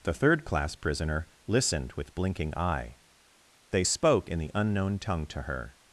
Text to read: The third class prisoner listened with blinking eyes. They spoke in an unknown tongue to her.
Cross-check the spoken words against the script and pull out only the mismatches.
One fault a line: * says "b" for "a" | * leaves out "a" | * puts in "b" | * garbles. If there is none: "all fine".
* says "eye" for "eyes"
* says "the" for "an"